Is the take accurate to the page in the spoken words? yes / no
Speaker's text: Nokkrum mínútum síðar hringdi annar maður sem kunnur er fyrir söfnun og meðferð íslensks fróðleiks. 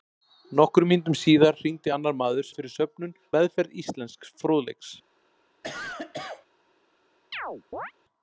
no